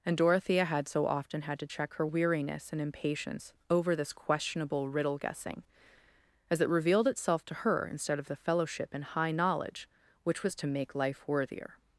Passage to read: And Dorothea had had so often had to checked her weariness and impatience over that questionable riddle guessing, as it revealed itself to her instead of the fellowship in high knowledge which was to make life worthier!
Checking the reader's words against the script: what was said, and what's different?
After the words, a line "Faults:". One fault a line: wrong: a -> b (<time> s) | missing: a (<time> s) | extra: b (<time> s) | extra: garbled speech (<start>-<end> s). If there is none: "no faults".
And Dorothea had so often had to check her weariness and impatience over this questionable riddle guessing, as it revealed itself to her instead of the fellowship in high knowledge which was to make life worthier!
Faults:
missing: had (0.9 s)
wrong: checked -> check (1.6 s)
wrong: that -> this (4.0 s)